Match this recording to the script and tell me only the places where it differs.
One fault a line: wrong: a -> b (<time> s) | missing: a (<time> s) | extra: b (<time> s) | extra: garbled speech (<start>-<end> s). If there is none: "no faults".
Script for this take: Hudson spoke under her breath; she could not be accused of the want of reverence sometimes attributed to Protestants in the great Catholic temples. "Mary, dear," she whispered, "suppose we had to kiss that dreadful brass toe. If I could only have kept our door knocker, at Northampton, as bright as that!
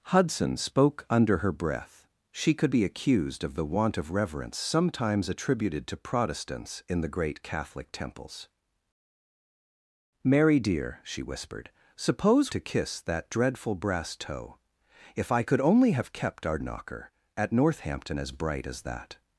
missing: not (2.7 s)
missing: we had (12.5 s)
missing: door (16.6 s)